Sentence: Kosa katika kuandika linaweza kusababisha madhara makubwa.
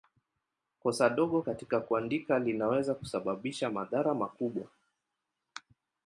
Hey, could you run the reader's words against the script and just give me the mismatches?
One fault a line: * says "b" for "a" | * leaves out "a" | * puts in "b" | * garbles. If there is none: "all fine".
* puts in "dogo"